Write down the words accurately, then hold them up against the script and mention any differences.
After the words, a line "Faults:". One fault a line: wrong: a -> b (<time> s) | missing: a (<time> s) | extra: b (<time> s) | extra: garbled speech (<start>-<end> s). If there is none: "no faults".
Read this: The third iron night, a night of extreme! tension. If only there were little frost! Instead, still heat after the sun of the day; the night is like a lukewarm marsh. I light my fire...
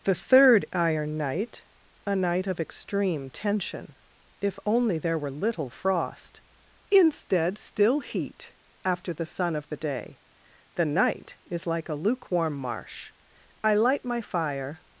The third iron night, a night of extreme! tension. If only there were little frost! Instead, still heat after the sun of the day; the night is like a lukewarm marsh. I light my fire...
Faults:
no faults